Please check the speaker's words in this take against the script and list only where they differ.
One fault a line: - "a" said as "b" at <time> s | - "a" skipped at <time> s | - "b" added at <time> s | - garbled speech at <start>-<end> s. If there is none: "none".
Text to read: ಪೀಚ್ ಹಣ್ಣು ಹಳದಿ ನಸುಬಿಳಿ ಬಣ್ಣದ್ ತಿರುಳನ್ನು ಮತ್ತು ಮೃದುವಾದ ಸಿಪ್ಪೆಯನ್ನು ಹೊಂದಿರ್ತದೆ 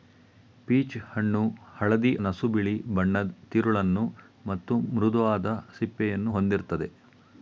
none